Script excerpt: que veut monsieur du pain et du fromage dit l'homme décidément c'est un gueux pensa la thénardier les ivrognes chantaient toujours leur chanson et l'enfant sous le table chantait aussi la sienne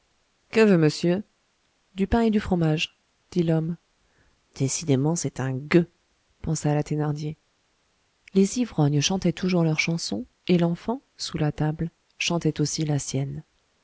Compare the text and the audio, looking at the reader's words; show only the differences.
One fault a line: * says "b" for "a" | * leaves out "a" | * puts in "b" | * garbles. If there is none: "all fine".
* says "la" for "le"